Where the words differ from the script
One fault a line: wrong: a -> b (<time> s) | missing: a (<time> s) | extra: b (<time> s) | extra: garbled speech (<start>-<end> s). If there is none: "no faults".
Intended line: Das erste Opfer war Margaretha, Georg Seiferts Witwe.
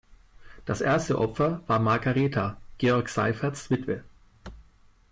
no faults